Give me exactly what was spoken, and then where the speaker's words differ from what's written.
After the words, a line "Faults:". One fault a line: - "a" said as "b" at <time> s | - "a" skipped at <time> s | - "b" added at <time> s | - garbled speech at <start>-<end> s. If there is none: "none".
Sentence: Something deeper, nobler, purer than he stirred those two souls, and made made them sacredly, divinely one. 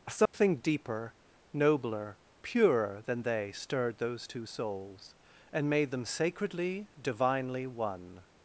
Something deeper, nobler, purer than they stirred those two souls, and made them sacredly, divinely one.
Faults:
- "he" said as "they" at 3.2 s
- "made" skipped at 5.9 s